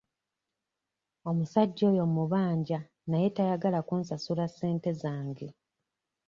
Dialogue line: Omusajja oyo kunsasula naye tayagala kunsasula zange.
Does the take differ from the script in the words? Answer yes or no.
yes